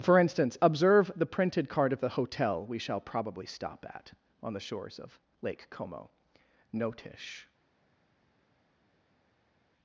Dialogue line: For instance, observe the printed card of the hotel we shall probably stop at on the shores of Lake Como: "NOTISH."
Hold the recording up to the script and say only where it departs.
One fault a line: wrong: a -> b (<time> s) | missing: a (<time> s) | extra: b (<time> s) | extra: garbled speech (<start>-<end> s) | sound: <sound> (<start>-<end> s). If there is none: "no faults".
no faults